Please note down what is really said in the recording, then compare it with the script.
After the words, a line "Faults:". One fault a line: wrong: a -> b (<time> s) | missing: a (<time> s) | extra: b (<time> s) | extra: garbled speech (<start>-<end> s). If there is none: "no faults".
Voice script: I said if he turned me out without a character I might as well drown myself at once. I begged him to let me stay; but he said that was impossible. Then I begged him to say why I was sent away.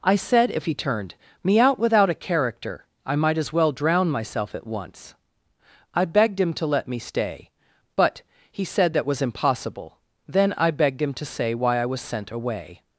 I said if he turned me out without a character I might as well drown myself at once. I begged him to let me stay; but he said that was impossible. Then I begged him to say why I was sent away.
Faults:
no faults